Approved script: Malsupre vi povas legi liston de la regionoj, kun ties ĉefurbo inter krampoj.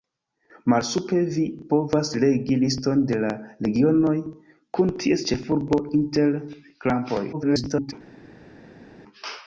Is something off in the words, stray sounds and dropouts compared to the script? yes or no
yes